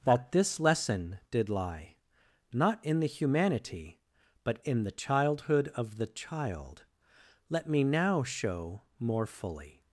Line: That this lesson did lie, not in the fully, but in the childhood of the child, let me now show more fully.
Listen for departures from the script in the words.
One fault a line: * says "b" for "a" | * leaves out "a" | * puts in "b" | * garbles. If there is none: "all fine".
* says "humanity" for "fully"